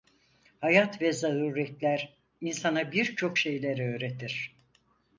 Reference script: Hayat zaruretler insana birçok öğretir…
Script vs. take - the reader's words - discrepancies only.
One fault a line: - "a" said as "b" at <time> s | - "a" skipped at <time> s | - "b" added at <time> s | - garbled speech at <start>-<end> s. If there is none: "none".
- "ve" added at 1.0 s
- "şeyler" added at 3.4 s